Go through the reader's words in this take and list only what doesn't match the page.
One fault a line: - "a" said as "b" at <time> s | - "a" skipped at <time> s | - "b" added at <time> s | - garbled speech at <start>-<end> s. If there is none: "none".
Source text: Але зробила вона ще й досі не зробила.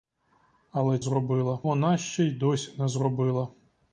none